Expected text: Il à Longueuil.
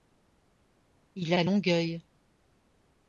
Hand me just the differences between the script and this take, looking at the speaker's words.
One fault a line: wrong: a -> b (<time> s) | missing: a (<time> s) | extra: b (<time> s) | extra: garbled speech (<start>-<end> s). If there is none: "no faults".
no faults